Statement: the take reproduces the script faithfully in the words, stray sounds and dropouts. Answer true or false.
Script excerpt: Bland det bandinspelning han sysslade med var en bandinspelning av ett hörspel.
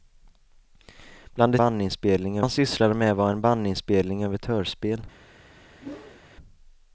false